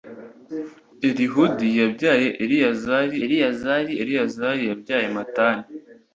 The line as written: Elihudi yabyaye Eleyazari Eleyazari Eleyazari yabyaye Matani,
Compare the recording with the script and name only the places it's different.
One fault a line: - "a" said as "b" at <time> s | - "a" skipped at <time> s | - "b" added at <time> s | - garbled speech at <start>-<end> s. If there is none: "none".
none